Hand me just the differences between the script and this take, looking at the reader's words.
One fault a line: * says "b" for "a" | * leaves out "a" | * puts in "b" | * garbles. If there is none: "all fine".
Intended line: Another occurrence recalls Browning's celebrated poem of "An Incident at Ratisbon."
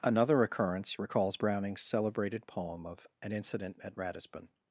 all fine